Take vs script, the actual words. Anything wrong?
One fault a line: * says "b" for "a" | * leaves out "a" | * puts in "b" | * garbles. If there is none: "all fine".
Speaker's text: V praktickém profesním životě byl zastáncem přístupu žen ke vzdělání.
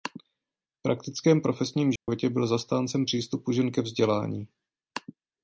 all fine